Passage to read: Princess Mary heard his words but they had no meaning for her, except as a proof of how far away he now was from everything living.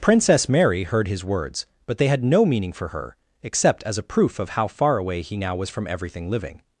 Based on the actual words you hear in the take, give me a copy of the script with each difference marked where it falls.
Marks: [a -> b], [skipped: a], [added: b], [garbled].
Princess Mary heard his words but they had no meaning for her, except as a proof of how far away he now was from everything living.